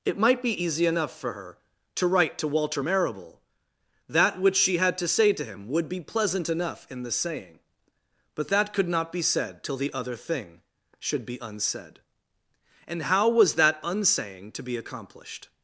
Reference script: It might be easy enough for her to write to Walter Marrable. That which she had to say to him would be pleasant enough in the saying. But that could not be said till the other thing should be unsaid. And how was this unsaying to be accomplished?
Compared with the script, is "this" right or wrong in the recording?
wrong